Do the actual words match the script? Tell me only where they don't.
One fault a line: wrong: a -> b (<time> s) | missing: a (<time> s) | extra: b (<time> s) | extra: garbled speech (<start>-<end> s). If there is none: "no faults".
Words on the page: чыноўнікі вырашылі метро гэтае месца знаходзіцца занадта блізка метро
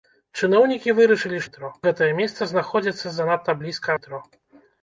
no faults